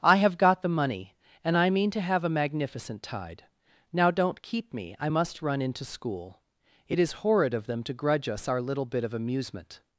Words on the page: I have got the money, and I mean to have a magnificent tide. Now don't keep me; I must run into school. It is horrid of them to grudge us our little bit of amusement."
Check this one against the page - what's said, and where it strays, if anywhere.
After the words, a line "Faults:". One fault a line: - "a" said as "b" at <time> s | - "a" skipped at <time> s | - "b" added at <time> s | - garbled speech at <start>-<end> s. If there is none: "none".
I have got the money, and I mean to have a magnificent tide. Now don't keep me; I must run into school. It is horrid of them to grudge us our little bit of amusement."
Faults:
none